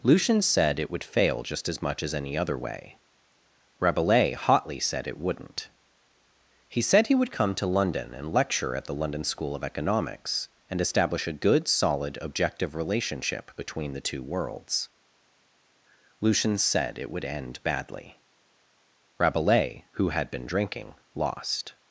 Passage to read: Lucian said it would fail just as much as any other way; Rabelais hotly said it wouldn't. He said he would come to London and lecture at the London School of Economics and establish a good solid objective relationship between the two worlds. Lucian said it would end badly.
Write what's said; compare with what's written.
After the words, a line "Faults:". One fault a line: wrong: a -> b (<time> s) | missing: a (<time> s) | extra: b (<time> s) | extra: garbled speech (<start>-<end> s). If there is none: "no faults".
Lucian said it would fail just as much as any other way; Rabelais hotly said it wouldn't. He said he would come to London and lecture at the London School of Economics and establish a good solid objective relationship between the two worlds. Lucian said it would end badly. Rabelais, who had been drinking, lost
Faults:
extra: Rabelais who had been drinking lost (19.2 s)